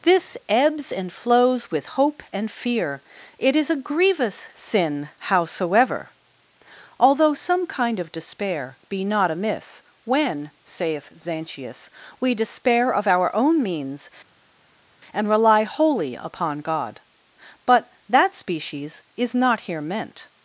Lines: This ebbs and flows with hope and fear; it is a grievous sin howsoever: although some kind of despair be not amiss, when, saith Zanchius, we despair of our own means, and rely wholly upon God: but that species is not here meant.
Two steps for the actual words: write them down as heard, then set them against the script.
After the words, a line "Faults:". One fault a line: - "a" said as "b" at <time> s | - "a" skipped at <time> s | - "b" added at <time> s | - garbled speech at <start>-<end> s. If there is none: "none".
This ebbs and flows with hope and fear; it is a grievous sin howsoever: although some kind of despair be not amiss, when, saith Zanchius, we despair of our own means, and rely wholly upon God: but that species is not here meant.
Faults:
none